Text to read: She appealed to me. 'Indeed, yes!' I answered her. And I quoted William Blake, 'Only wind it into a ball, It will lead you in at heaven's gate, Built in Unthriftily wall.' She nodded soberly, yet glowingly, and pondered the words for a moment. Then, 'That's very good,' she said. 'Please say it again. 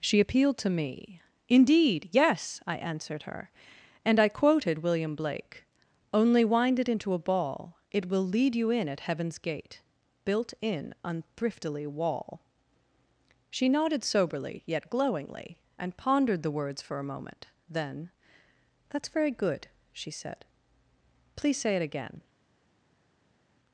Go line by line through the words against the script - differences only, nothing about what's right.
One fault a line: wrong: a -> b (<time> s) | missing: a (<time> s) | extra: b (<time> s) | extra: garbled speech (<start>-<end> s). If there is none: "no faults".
no faults